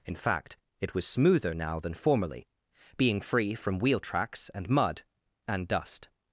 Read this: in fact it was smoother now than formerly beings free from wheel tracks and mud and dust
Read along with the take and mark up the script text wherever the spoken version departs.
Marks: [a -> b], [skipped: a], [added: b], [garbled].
in fact it was smoother now than formerly [beings -> being] free from wheel tracks and mud and dust